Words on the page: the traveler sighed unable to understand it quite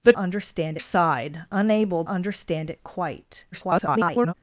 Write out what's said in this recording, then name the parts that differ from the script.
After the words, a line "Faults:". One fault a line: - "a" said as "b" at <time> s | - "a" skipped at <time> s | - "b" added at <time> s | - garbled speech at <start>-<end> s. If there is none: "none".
the understand sighed unable understand it quite [garbled]
Faults:
- "traveler" said as "understand" at 0.2 s
- "to" skipped at 2.0 s
- garbled speech at 3.5-4.3 s